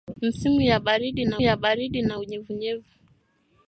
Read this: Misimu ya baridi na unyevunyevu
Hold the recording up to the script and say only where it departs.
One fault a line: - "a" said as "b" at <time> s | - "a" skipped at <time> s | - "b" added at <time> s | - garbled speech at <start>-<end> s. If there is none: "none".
- "ya baridi na" added at 1.4 s